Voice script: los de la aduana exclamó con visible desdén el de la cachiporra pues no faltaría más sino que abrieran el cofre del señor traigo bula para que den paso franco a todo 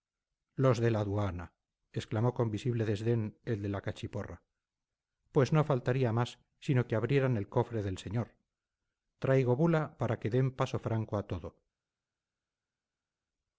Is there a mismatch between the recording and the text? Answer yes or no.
no